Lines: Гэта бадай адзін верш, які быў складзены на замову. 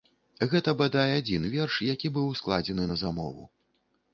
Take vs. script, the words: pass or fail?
pass